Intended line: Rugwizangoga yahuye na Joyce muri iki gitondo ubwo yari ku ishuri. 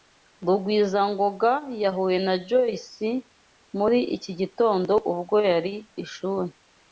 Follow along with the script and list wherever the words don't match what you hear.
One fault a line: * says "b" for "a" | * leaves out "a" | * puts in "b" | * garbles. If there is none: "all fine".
* leaves out "ku"